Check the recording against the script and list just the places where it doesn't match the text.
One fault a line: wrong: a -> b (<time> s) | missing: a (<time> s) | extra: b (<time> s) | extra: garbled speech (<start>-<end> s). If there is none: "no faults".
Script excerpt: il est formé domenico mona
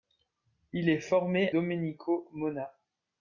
no faults